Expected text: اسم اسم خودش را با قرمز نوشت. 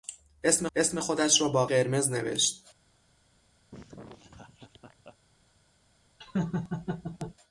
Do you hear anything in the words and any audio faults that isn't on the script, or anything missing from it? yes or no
yes